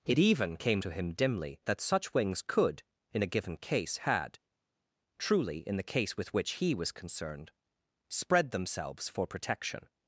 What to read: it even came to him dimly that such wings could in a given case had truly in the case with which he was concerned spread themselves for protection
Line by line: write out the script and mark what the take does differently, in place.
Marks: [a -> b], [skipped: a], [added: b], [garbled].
it even came to him dimly that such wings could in a given case had truly in the case with which he was concerned spread themselves for protection